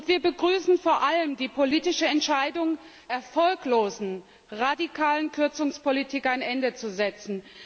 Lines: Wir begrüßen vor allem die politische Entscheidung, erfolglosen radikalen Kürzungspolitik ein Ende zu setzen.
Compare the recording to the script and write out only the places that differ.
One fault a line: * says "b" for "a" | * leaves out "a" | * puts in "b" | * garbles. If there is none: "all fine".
all fine